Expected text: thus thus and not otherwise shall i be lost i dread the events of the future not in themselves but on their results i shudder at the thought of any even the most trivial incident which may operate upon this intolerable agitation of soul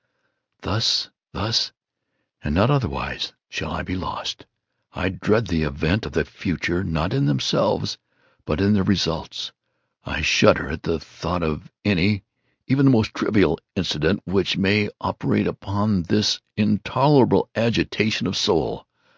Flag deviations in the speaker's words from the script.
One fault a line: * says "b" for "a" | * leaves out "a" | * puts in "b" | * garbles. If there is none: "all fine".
* says "in" for "on"